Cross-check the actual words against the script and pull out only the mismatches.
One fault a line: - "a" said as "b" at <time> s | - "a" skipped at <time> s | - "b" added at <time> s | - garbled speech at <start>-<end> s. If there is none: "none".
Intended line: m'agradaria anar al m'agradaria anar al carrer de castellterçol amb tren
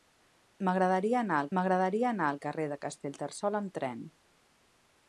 none